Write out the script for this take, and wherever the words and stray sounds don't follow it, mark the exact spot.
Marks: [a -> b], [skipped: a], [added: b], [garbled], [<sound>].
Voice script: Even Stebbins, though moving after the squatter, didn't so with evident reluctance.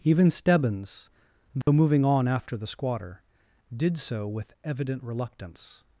Even Stebbins, though [dropout] moving [added: on] after the squatter, [didn't -> did] so with evident reluctance.